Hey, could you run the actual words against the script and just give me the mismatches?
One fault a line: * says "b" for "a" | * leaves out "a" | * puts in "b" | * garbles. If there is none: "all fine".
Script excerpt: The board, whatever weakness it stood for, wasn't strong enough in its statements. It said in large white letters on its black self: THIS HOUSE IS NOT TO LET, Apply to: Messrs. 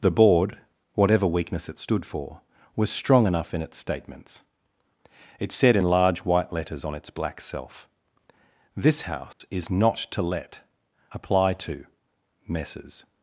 * says "was" for "wasn't"